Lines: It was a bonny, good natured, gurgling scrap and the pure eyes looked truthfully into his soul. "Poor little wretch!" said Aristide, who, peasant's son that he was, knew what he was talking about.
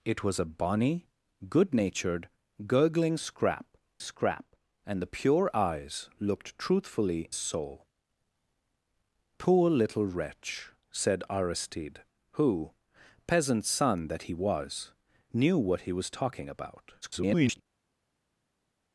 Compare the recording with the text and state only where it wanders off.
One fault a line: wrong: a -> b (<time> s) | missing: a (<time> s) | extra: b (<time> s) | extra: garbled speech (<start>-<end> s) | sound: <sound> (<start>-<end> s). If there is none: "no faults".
extra: scrap (4.0 s)
missing: into his (7.3 s)
extra: garbled speech (17.0-17.6 s)